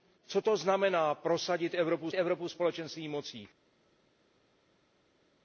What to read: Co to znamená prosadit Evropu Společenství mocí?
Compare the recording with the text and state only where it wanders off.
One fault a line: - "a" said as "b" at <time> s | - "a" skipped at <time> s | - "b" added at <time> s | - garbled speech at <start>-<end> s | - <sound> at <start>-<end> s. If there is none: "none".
- "Evropu" added at 2.1 s